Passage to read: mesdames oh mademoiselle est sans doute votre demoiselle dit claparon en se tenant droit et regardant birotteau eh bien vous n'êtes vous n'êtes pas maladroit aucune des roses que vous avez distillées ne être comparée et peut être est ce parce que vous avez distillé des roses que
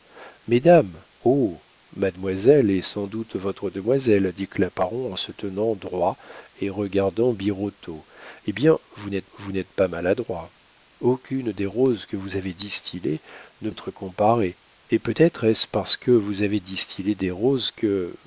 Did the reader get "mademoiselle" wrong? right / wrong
right